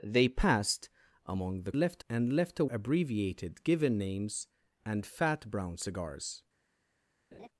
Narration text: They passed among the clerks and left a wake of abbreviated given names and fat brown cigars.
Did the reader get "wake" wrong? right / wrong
wrong